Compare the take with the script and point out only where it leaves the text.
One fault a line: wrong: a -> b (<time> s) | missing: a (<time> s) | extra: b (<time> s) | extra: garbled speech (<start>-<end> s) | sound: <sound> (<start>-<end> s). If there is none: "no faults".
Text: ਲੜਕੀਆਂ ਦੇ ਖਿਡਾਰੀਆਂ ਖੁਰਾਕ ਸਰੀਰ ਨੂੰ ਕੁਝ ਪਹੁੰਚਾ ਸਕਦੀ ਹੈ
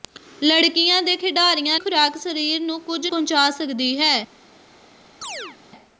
sound: chirp (5.2-5.6 s)